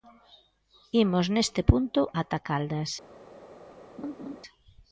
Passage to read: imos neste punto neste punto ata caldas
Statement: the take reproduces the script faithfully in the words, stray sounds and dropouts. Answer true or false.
false